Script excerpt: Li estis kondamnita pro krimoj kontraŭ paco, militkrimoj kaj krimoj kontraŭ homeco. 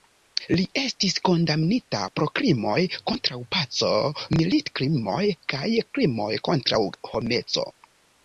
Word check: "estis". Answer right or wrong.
right